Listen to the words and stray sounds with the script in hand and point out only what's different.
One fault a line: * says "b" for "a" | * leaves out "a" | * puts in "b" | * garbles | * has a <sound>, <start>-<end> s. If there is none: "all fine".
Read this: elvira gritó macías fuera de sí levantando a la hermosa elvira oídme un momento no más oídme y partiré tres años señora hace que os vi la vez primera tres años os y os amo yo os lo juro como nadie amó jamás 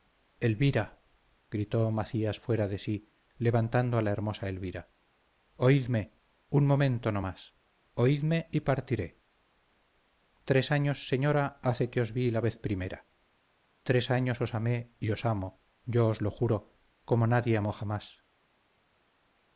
* puts in "amé"